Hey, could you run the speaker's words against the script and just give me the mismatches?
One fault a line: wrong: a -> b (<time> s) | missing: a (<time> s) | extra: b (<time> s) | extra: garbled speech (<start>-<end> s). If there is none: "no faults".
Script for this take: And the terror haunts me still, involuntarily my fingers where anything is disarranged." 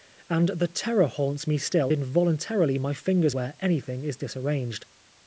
no faults